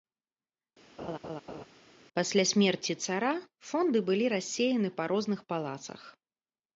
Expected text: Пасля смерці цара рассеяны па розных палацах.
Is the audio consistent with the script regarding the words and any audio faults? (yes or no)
no